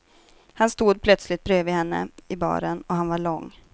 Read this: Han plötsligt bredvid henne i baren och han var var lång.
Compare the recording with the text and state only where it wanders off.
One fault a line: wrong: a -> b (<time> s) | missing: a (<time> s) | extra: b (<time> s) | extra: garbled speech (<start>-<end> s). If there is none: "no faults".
extra: stod (0.7 s)
missing: var (3.2 s)